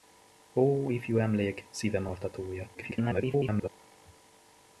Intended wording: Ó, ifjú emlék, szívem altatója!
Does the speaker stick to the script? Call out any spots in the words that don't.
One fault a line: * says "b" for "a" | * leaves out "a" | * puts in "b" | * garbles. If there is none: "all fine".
* garbles